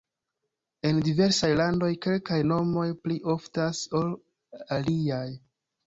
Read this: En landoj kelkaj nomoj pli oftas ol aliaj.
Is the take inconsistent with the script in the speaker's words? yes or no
yes